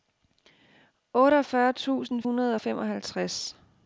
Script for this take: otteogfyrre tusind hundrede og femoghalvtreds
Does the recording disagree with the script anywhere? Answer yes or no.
no